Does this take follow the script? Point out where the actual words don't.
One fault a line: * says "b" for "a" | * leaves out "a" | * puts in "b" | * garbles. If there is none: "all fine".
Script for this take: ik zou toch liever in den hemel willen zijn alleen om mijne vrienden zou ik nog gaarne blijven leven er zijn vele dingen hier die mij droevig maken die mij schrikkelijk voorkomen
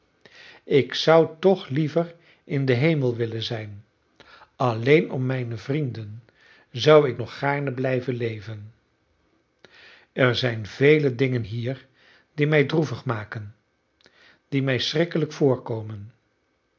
all fine